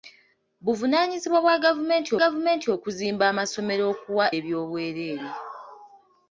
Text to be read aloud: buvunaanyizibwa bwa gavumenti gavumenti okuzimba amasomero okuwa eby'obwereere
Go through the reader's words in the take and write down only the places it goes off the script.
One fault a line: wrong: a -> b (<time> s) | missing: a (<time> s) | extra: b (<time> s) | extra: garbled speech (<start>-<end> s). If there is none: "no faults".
no faults